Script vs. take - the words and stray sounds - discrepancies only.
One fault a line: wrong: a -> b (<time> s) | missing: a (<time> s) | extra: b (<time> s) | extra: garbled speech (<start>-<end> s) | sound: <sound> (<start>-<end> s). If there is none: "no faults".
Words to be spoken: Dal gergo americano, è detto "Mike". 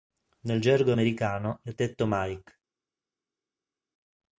wrong: Dal -> Nel (0.5 s)